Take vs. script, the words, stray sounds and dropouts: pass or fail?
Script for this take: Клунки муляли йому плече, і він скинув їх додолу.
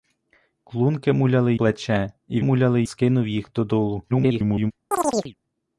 fail